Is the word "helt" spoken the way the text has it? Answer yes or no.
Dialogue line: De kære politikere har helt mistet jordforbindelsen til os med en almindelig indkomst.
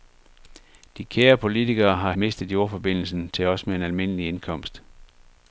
no